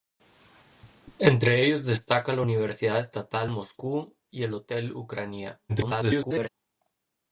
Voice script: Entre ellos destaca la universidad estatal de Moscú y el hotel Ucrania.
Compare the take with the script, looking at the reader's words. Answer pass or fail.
fail